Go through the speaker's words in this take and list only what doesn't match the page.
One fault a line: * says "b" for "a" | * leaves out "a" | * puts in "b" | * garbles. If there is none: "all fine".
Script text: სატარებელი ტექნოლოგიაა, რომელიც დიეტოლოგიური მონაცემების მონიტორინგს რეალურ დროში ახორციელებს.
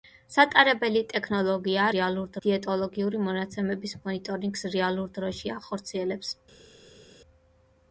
* says "რეალურ" for "რომელიც"